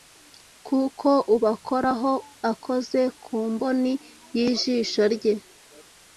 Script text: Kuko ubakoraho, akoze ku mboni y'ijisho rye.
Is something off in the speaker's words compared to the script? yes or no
no